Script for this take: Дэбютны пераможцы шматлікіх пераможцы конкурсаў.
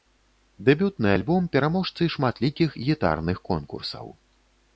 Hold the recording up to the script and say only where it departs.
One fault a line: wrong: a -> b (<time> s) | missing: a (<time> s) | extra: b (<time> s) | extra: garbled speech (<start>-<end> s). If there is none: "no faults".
extra: альбом (1.2 s)
wrong: пераможцы -> гітарных (2.9 s)